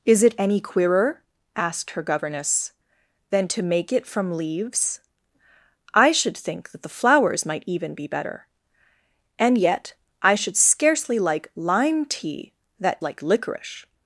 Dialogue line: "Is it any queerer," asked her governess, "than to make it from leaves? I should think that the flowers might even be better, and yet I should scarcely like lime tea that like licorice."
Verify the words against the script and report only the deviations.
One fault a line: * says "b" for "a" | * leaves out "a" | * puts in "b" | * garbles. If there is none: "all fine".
all fine